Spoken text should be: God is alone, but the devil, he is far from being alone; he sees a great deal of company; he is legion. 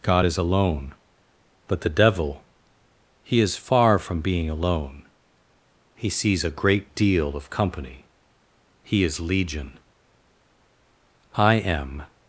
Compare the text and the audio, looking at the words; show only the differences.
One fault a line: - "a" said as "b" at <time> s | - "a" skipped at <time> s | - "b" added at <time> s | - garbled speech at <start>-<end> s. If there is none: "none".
- "I am" added at 11.4 s